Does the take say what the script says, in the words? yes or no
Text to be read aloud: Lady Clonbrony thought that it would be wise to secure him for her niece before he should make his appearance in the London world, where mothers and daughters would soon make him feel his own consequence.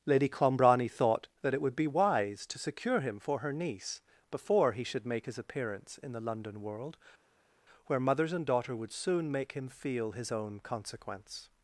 no